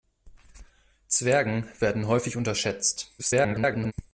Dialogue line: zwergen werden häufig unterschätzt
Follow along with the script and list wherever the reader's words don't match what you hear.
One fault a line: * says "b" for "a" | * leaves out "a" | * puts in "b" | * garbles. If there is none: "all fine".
* garbles